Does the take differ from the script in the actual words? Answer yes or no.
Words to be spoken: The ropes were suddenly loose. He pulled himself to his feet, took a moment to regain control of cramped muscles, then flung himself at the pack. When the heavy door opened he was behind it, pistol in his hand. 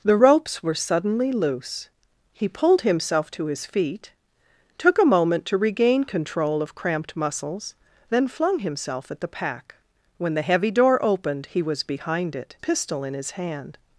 no